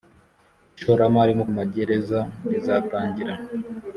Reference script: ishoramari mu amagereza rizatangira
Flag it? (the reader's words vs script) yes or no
no